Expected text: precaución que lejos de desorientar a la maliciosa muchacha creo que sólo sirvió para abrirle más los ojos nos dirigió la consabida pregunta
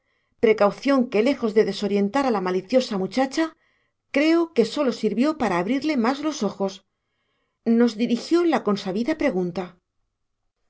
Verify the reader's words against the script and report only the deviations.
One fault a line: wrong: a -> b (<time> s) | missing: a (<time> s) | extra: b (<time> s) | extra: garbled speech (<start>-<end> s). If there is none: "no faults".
no faults